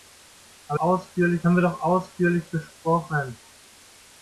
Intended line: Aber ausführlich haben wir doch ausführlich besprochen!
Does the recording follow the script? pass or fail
pass